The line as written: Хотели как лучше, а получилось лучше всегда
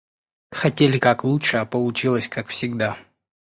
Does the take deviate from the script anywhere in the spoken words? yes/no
yes